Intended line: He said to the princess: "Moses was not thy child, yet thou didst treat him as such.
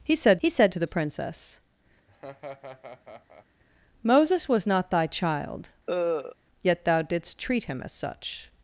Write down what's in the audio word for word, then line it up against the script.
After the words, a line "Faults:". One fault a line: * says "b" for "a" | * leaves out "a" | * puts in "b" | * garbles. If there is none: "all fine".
He said he said to the princess: "Moses was not thy child, yet thou didst treat him as such.
Faults:
* puts in "he said"